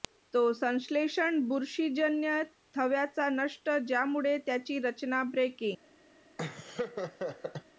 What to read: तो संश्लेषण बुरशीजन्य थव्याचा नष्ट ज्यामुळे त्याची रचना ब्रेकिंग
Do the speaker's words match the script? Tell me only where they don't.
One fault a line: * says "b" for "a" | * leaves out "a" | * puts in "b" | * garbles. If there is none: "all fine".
all fine